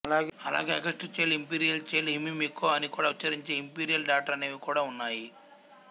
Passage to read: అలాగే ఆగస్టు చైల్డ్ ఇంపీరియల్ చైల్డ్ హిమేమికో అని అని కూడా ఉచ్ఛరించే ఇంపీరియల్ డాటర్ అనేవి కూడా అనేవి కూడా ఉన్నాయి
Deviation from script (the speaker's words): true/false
true